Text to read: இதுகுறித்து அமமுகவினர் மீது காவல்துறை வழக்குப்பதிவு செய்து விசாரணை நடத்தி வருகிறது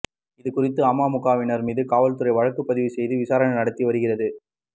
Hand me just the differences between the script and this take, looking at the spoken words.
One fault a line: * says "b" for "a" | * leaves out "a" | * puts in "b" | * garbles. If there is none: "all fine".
all fine